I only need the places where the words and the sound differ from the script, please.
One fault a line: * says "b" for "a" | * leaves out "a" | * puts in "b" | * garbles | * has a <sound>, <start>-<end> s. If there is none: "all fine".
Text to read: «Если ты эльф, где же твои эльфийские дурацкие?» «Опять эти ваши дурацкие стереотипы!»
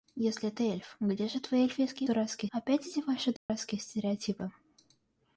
* has a dropout, 3.4-3.5 s